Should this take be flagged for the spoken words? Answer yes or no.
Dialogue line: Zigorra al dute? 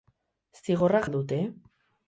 no